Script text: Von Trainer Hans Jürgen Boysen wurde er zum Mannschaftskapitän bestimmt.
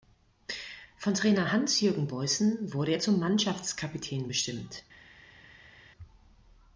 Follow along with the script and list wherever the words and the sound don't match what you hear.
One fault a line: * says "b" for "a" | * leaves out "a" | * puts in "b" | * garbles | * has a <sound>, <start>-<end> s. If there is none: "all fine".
all fine